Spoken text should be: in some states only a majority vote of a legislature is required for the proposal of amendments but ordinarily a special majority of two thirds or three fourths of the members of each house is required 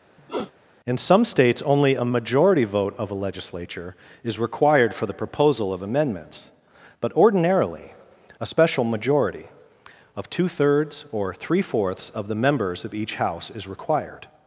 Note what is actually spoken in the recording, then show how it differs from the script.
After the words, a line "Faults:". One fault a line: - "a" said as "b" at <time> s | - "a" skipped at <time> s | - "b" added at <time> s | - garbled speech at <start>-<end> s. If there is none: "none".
in some states only a majority vote of a legislature is required for the proposal of amendments but ordinarily a special majority of two thirds or three fourths of the members of each house is required
Faults:
none